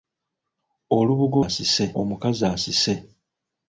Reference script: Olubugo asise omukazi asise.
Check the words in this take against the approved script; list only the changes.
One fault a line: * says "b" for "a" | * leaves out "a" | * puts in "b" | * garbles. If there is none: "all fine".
all fine